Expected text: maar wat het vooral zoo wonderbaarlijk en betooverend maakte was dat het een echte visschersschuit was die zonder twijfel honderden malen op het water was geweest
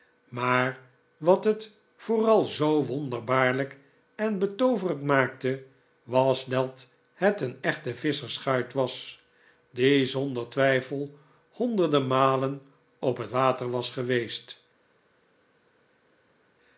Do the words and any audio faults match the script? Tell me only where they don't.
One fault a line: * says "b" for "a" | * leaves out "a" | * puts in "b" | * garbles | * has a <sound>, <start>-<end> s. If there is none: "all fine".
all fine